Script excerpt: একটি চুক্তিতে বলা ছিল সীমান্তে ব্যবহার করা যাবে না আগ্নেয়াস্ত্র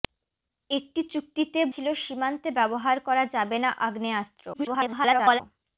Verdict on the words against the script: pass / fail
fail